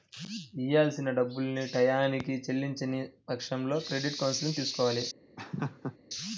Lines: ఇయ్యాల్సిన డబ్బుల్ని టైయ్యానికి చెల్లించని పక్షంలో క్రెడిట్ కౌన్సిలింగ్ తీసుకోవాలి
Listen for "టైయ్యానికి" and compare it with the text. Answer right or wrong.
right